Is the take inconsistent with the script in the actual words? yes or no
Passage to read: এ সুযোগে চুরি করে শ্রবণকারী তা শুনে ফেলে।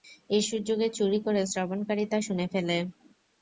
no